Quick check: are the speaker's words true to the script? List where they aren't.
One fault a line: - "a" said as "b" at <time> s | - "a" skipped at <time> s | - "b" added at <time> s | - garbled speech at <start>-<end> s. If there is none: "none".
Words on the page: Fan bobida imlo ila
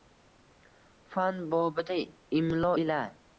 none